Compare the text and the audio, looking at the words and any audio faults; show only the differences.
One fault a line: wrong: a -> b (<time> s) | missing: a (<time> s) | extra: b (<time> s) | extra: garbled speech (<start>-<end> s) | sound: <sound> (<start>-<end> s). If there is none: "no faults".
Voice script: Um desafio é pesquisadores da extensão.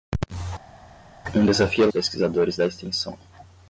no faults